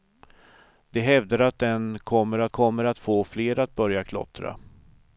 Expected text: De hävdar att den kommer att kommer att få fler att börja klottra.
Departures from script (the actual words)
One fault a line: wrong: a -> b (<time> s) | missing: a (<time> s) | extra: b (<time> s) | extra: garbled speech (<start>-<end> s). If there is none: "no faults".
no faults